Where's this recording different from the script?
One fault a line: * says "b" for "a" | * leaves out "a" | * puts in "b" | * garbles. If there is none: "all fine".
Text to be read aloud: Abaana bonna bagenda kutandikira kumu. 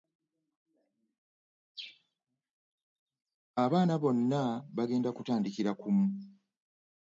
all fine